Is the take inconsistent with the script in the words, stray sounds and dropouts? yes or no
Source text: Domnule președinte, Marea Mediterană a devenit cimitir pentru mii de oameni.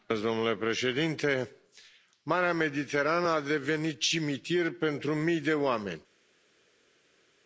no